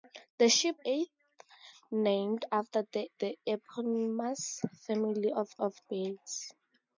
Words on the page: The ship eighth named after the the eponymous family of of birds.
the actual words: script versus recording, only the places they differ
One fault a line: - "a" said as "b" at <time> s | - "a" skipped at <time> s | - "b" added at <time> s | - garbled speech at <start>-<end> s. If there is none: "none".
none